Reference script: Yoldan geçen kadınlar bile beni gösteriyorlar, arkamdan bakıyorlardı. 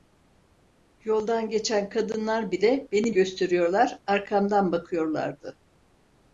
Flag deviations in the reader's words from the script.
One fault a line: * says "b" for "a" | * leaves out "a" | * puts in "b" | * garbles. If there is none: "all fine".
all fine